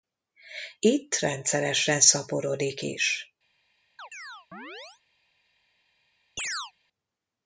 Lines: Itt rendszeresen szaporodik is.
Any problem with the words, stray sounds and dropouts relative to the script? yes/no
yes